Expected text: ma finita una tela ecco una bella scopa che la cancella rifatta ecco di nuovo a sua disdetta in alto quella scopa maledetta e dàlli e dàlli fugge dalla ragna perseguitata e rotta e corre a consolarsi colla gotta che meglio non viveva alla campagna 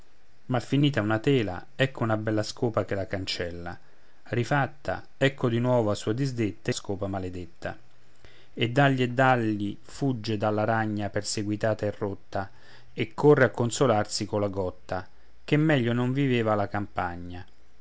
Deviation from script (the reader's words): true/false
true